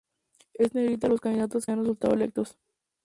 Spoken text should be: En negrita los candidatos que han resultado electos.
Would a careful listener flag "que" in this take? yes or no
yes